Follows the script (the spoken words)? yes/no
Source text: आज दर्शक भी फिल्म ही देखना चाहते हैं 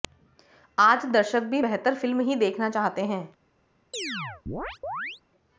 no